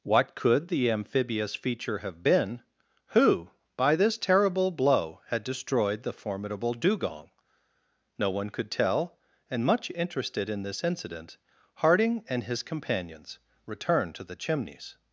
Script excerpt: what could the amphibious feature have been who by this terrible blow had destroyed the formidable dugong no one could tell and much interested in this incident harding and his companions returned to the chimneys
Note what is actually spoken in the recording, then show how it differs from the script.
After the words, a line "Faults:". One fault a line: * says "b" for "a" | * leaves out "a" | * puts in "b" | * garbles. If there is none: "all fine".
what could the amphibious feature have been who by this terrible blow had destroyed the formidable dugong no one could tell and much interested in this incident harding and his companions returned to the chimneys
Faults:
all fine